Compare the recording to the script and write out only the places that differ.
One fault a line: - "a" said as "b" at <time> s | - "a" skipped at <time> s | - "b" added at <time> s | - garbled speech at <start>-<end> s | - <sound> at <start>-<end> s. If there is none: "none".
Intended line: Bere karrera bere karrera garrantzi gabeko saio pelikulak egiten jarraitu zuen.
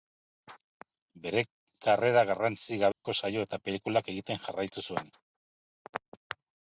- "bere karrera" skipped at 2.2 s
- dropout at 2.9-3.0 s
- "eta" added at 3.5 s